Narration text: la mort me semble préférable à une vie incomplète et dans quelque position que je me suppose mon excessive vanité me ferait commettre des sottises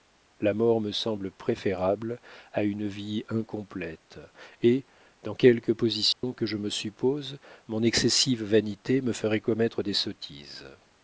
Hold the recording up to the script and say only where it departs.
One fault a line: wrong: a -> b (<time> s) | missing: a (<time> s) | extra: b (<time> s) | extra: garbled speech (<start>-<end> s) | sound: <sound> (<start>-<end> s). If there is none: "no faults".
sound: dropout (6.1-6.2 s)